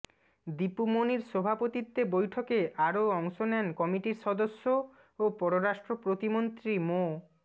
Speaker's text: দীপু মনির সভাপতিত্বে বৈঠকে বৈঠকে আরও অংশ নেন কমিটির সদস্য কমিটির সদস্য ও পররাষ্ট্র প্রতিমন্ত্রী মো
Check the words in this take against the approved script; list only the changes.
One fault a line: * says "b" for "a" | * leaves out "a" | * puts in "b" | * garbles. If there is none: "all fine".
* leaves out "বৈঠকে"
* leaves out "কমিটির সদস্য"